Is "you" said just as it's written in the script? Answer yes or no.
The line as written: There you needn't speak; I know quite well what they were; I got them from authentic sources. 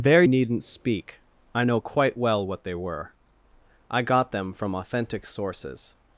no